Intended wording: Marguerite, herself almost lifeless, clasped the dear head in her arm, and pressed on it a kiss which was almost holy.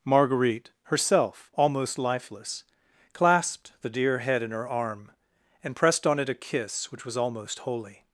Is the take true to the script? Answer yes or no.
yes